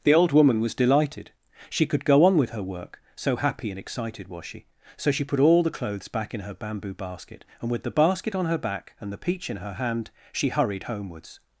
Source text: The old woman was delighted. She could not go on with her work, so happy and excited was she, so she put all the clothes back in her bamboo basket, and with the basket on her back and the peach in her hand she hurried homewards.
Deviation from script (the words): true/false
true